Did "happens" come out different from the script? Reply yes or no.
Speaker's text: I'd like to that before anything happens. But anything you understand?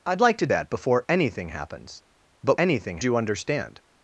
no